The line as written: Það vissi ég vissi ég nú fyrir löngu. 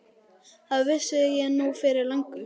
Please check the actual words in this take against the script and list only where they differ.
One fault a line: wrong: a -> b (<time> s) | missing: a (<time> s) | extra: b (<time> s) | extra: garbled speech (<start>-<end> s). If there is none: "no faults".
missing: vissi ég (1.5 s)